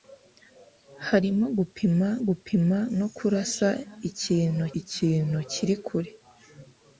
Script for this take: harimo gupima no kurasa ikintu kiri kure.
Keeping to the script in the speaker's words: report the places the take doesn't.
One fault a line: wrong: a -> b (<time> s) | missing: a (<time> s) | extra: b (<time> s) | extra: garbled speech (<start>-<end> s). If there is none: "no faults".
extra: gupima (2.3 s)
extra: ikintu (4.8 s)